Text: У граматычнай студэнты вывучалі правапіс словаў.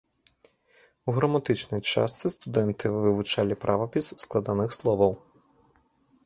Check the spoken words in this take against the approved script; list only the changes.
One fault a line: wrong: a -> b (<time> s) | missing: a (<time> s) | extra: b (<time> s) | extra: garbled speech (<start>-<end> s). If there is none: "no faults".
extra: частцы (1.9 s)
extra: складаных (4.2 s)